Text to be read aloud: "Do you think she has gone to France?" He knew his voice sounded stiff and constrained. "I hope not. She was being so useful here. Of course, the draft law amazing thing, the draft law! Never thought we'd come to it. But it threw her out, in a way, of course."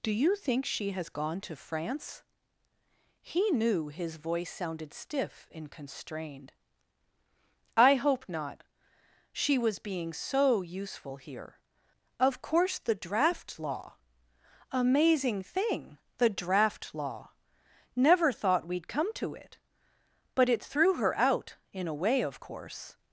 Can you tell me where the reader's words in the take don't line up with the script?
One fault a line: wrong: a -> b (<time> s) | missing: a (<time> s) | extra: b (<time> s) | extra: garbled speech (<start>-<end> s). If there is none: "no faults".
no faults